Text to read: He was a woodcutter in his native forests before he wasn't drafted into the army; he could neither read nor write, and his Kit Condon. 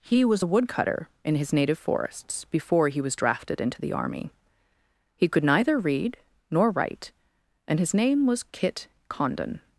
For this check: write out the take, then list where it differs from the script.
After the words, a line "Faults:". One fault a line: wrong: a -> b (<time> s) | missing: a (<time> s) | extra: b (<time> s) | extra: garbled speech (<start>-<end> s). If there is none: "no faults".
He was a woodcutter in his native forests before he was drafted into the army; he could neither read nor write, and his name was Kit Condon.
Faults:
wrong: wasn't -> was (3.0 s)
extra: name was (7.9 s)